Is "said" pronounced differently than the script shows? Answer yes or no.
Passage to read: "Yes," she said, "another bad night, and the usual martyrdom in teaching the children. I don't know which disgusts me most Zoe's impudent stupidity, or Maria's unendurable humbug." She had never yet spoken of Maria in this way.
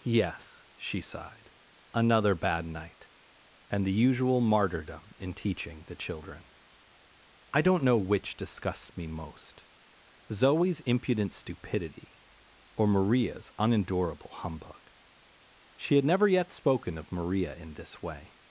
yes